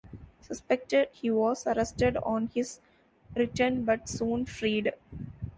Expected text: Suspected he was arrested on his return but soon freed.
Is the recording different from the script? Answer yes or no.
no